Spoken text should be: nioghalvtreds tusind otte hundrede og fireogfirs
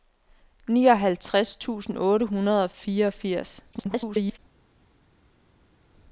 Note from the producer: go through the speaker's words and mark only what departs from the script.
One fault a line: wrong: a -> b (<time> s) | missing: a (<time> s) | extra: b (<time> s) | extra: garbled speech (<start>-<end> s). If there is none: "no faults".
extra: garbled speech (3.7-4.4 s)